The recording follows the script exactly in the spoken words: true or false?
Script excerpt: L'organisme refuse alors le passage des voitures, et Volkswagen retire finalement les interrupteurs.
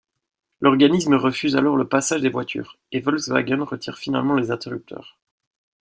true